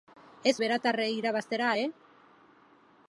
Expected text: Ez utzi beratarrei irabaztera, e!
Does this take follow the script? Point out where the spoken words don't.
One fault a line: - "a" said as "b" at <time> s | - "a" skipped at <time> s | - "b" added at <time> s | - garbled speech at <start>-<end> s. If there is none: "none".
- "utzi" skipped at 0.5 s